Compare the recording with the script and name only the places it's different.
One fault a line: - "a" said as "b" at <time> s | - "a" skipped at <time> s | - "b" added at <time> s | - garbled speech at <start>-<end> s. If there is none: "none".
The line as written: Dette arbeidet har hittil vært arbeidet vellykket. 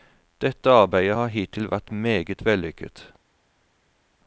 - "arbeidet" said as "meget" at 1.9 s